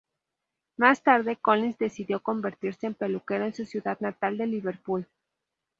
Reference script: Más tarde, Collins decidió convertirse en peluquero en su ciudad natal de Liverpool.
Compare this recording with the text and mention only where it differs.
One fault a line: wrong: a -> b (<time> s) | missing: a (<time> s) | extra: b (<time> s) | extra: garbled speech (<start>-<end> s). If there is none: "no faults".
no faults